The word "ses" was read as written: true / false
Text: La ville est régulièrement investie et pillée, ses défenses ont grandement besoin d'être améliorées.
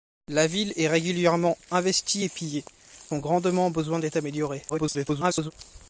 false